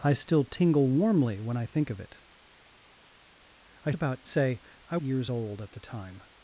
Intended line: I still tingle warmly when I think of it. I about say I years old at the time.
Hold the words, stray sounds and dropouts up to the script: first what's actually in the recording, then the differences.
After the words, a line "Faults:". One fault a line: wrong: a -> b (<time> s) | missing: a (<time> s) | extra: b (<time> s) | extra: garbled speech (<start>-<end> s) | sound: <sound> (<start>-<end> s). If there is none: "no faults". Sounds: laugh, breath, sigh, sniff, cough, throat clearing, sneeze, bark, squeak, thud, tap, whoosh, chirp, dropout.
I still tingle warmly when I think of it. I about say I years old at the time.
Faults:
no faults